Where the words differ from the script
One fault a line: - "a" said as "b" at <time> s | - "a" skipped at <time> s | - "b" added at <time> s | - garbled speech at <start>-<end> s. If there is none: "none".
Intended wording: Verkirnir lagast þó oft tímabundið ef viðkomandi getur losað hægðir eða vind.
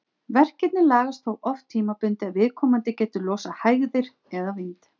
none